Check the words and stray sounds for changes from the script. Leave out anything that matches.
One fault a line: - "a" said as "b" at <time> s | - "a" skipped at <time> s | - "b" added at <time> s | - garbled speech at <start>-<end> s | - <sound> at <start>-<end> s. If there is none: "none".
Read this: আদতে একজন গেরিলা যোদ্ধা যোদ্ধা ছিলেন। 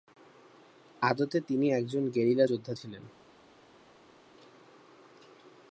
- "তিনি" added at 1.4 s
- "যোদ্ধা" skipped at 2.7 s